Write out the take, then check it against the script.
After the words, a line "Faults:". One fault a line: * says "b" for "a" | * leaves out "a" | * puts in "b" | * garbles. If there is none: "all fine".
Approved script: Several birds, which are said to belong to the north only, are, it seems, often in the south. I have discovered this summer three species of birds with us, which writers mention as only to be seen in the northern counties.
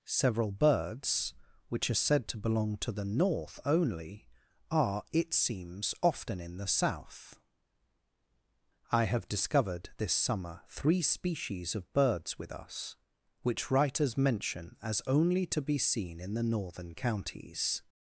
Several birds, which are said to belong to the north only, are, it seems, often in the south. I have discovered this summer three species of birds with us, which writers mention as only to be seen in the northern counties.
Faults:
all fine